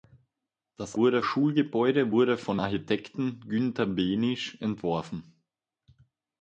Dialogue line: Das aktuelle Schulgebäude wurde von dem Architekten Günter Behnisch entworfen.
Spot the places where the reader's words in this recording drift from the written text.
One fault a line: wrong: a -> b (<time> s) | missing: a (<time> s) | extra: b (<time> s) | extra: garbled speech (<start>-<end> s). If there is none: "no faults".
wrong: aktuelle -> wurde (0.9 s)
missing: dem (2.6 s)